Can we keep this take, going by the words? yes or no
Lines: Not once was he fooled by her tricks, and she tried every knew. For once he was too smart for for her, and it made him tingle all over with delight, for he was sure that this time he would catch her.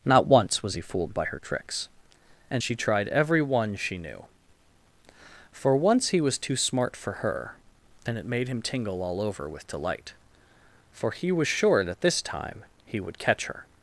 no